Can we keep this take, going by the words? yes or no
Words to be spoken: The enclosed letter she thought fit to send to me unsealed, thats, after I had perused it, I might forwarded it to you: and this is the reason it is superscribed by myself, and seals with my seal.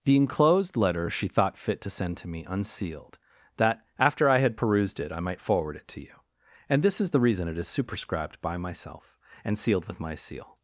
no